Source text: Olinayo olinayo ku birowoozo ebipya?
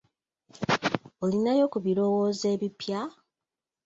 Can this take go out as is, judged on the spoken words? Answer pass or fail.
fail